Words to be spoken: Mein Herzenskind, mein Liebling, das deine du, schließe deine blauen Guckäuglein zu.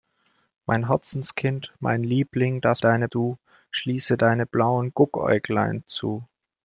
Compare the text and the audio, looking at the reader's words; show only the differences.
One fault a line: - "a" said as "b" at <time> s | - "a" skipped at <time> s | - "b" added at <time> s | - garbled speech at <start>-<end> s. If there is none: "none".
none